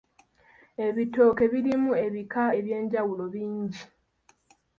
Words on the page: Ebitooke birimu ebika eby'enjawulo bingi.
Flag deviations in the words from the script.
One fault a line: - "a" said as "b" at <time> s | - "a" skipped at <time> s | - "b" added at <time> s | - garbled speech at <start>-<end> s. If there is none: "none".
none